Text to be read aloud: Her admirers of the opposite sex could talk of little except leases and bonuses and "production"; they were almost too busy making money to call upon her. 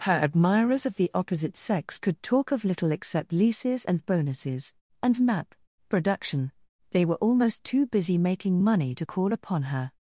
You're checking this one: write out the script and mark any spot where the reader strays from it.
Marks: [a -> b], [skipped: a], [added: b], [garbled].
Her admirers of the opposite sex could talk of little except leases and bonuses and [added: map] "production"; they were almost too busy making money to call upon her.